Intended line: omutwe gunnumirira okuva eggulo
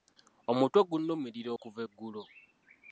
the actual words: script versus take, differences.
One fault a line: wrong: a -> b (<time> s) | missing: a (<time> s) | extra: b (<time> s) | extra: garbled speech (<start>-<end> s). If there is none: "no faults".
no faults